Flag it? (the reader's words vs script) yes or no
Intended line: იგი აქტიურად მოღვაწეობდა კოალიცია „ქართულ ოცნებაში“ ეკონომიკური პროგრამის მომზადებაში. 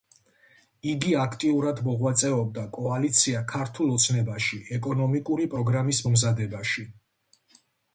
no